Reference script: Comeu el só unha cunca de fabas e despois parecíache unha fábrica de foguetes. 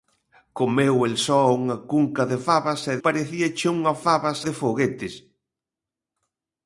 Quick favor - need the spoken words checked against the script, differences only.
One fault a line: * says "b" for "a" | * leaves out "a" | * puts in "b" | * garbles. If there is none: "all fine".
* leaves out "despois"
* says "fabas" for "fábrica"